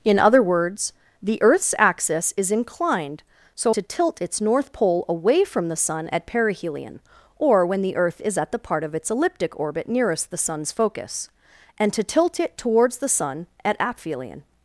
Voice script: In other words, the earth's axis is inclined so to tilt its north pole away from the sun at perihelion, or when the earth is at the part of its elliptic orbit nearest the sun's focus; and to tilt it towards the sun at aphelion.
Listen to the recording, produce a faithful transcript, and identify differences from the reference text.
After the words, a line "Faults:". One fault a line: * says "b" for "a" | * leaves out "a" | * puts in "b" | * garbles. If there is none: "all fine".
In other words, the earth's axis is inclined so to tilt its north pole away from the sun at perihelion, or when the earth is at the part of its elliptic orbit nearest the sun's focus; and to tilt it towards the sun at aphelion.
Faults:
all fine